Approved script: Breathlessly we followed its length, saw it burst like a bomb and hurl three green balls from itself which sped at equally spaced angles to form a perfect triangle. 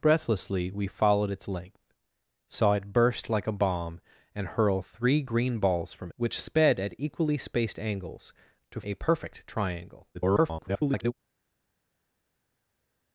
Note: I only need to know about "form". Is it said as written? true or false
false